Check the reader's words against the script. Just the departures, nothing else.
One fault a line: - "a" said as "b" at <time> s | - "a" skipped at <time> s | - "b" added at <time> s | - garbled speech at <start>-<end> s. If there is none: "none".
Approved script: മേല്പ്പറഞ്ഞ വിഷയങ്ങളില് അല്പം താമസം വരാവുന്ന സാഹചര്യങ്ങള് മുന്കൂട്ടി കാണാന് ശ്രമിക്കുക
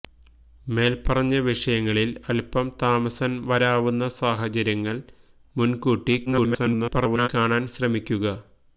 - garbled speech at 6.3-7.3 s